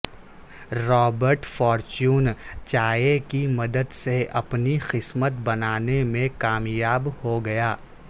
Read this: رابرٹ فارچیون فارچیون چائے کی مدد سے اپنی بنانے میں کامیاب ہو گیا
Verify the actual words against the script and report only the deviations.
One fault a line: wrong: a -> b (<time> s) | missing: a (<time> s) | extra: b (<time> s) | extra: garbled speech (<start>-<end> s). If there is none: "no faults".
missing: فارچیون (2.3 s)
extra: قسمت (4.9 s)